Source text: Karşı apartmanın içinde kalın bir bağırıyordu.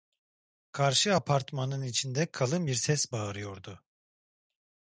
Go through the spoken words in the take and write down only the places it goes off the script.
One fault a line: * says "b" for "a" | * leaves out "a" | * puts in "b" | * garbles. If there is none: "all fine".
* puts in "ses"